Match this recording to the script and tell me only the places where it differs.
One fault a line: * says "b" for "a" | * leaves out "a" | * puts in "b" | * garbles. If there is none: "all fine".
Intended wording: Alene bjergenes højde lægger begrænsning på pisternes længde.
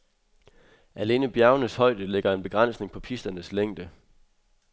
* puts in "en"